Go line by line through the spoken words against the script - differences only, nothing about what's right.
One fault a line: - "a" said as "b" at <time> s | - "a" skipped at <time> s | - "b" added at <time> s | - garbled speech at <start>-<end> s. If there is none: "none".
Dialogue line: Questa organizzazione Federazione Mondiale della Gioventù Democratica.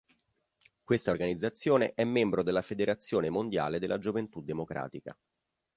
- "è membro della" added at 1.9 s